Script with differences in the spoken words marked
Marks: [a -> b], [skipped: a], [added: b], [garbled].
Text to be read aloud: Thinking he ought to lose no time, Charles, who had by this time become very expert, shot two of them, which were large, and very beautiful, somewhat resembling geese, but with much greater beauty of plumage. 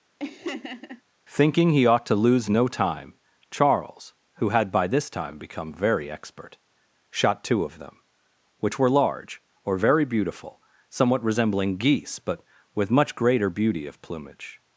Thinking he ought to lose no time, Charles, who had by this time become very expert, shot two of them, which were large, [and -> or] very beautiful, somewhat resembling geese, but with much greater beauty of plumage.